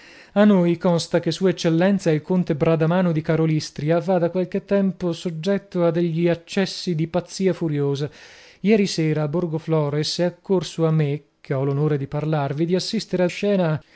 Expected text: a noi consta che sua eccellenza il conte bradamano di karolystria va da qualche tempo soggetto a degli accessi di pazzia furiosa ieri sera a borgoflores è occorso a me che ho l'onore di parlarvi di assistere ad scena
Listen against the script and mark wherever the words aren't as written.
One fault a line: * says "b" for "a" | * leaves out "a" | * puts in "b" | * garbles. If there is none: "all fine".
all fine